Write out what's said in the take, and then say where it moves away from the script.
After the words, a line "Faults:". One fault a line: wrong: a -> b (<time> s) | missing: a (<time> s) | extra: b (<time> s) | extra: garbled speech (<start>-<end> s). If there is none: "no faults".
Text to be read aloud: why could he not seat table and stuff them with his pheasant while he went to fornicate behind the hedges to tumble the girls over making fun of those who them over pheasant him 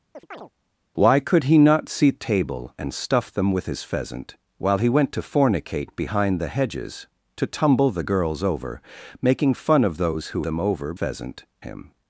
why could he not seat table and stuff them with his pheasant while he went to fornicate behind the hedges to tumble the girls over making fun of those who them over pheasant him
Faults:
no faults